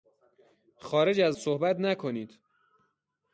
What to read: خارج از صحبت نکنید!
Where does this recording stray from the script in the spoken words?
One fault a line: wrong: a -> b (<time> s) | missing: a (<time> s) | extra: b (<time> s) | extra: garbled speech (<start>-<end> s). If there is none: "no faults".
no faults